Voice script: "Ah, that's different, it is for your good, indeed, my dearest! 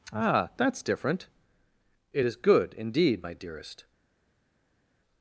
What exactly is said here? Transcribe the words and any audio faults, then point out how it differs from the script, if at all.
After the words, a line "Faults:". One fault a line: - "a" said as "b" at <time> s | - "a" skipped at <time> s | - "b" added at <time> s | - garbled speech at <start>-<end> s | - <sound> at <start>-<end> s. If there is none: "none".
"Ah, that's different, it is good, indeed, my dearest!
Faults:
- "for your" skipped at 2.4 s